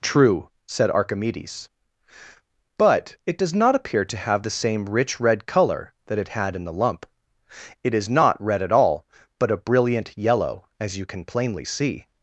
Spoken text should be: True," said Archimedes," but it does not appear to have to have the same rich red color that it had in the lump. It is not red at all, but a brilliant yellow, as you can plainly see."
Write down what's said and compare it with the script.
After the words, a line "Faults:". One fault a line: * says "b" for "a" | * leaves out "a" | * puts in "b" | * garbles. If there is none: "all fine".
True," said Archimedes," but it does not appear to have the same rich red color that it had in the lump. It is not red at all, but a brilliant yellow, as you can plainly see."
Faults:
* leaves out "to have"